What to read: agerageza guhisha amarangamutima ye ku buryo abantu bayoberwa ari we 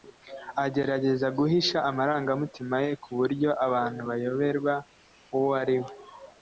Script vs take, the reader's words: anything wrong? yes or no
yes